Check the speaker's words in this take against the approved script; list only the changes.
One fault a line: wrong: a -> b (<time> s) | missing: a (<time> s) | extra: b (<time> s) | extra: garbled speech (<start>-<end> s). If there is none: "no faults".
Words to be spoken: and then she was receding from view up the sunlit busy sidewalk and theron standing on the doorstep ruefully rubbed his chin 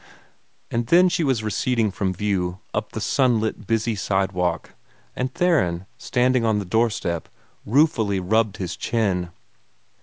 no faults